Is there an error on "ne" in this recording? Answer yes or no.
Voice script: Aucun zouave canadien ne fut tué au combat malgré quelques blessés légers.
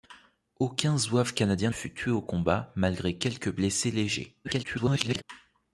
yes